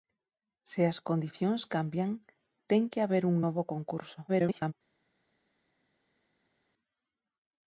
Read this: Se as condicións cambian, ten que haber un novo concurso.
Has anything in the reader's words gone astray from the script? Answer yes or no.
yes